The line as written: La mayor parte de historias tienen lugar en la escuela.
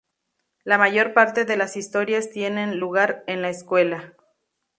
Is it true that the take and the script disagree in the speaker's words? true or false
true